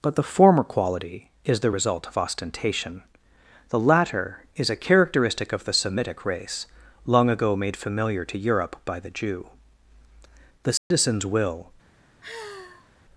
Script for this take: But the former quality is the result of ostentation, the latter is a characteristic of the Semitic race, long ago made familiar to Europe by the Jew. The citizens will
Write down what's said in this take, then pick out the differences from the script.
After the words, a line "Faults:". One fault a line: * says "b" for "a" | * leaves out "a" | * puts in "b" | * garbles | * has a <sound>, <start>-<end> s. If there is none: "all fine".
But the former quality is the result of ostentation, the latter is a characteristic of the Semitic race, long ago made familiar to Europe by the Jew. The citizens will
Faults:
* has a dropout, 10.8-10.9 s
* has a sigh, 12.2-12.9 s